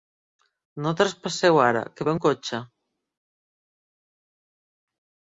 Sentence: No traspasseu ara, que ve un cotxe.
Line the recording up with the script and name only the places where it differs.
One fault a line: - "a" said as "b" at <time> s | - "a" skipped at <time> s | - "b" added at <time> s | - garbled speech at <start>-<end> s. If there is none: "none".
none